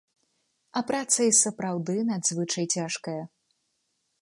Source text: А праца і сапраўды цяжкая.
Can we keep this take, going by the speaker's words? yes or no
no